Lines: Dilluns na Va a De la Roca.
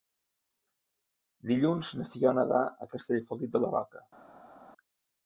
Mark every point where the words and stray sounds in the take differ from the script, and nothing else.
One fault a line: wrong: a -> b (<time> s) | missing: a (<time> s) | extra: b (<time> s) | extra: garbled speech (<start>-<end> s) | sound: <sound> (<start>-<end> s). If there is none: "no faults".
extra: Fiona (2.1 s)
extra: Castellfollit (3.0 s)